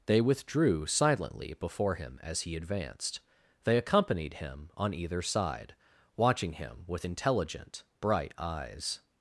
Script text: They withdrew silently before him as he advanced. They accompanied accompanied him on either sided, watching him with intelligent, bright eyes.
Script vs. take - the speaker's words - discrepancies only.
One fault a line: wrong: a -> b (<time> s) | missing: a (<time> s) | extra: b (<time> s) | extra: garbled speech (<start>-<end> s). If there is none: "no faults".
missing: accompanied (4.3 s)
wrong: sided -> side (5.2 s)